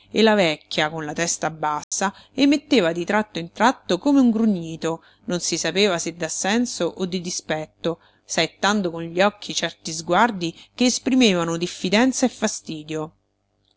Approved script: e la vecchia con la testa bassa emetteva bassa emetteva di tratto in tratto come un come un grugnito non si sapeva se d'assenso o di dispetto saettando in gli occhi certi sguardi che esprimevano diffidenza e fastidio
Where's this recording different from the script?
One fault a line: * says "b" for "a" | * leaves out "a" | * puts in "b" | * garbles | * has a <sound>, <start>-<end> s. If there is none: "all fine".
* has a dropout, 1.8-1.9 s
* leaves out "bassa emetteva"
* leaves out "come un"
* says "con" for "in"